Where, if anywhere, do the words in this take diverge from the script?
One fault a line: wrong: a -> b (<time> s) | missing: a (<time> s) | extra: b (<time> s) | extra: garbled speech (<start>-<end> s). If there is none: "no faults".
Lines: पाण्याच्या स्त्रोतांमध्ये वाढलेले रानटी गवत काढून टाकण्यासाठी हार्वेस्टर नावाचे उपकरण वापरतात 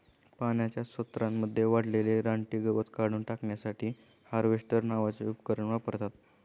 no faults